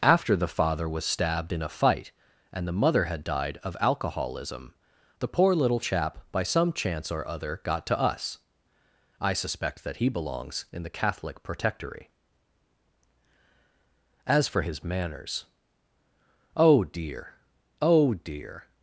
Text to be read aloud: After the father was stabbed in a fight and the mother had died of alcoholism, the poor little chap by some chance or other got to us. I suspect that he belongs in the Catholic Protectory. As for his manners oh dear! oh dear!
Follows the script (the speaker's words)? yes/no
yes